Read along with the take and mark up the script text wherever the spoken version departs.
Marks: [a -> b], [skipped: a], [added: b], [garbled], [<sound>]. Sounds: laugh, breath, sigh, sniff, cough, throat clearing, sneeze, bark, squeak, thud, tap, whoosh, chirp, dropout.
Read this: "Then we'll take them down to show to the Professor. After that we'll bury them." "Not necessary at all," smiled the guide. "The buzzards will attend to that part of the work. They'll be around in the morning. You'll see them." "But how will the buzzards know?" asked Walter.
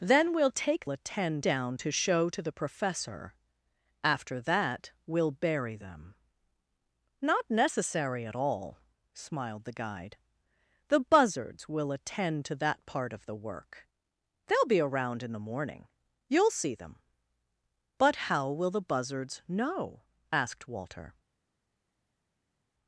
"Then we'll take [them -> attend] down to show to the Professor. After that we'll bury them." "Not necessary at all," smiled the guide. "The buzzards will attend to that part of the work. They'll be around in the morning. You'll see them." "But how will the buzzards know?" asked Walter.